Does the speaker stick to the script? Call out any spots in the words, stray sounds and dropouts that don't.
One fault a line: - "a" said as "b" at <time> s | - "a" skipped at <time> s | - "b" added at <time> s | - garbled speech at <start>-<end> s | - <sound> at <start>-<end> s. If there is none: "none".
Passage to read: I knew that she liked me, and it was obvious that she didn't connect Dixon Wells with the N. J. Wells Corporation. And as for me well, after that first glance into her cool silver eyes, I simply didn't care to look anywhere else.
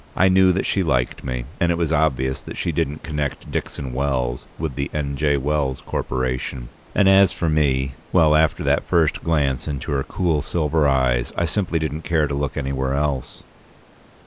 none